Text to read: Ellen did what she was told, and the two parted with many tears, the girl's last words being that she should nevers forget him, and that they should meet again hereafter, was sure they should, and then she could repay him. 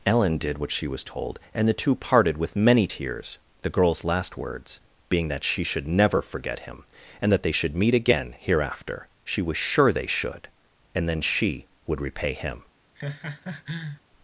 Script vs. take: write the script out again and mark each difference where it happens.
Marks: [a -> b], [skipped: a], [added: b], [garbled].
Ellen did what she was told, and the two parted with many tears, the girl's last words being that she should [nevers -> never] forget him, and that they should meet again hereafter, [added: she] was sure they should, and then she [could -> would] repay him.